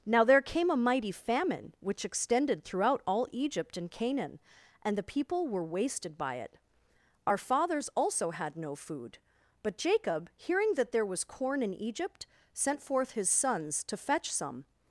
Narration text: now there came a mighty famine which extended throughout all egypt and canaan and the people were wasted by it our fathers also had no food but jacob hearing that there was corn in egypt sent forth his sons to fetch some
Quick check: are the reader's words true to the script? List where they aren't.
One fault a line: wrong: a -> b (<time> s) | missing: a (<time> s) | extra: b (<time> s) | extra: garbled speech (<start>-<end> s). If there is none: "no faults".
no faults